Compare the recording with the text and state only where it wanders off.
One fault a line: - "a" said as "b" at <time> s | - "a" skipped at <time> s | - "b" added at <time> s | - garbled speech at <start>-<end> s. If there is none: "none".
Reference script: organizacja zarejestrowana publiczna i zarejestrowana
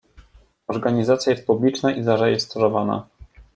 - "zarejestrowana" said as "jest" at 1.3 s